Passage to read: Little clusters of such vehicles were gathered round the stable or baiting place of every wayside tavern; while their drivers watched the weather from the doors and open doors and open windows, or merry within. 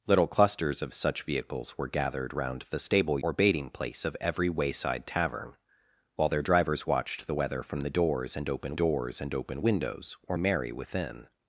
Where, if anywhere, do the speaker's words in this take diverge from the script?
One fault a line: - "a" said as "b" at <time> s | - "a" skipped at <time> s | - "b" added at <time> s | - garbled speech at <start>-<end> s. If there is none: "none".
none